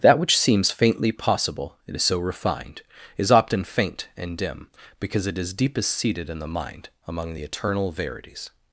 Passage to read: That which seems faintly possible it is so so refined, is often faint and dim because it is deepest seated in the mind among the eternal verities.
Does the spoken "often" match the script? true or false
true